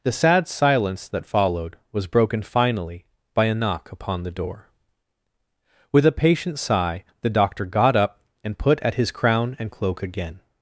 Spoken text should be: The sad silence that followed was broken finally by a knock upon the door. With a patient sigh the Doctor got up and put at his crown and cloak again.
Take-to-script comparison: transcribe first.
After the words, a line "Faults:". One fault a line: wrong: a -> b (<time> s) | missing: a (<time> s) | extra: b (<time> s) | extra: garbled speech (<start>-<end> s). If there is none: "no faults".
The sad silence that followed was broken finally by a knock upon the door. With a patient sigh the Doctor got up and put at his crown and cloak again.
Faults:
no faults